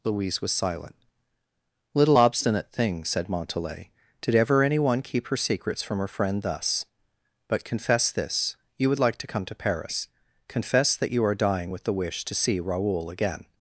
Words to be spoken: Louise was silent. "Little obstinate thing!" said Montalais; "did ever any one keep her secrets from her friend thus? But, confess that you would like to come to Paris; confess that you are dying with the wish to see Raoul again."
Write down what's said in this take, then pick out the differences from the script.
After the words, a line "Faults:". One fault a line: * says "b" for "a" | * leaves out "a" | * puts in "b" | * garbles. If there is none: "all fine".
Louise was silent. "Little obstinate thing!" said Montalais; "did ever any one keep her secrets from her friend thus? But, confess this you would like to come to Paris; confess that you are dying with the wish to see Raoul again."
Faults:
* says "this" for "that"